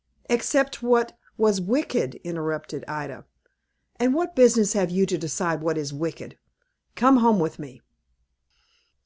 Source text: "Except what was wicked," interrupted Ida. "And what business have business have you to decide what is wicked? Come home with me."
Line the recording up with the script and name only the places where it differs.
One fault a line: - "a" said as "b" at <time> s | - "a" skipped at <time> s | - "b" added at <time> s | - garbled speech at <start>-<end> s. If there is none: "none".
- "business have" skipped at 4.9 s